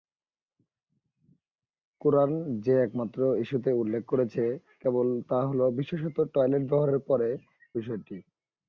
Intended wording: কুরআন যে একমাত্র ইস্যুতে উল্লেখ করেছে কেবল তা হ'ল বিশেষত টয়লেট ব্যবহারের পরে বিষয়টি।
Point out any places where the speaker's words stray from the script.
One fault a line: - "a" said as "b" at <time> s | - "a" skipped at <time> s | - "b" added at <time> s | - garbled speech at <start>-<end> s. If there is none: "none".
none